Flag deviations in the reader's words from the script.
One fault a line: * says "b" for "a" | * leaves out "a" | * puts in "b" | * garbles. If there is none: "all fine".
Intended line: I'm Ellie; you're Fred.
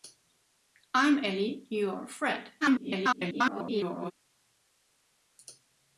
* garbles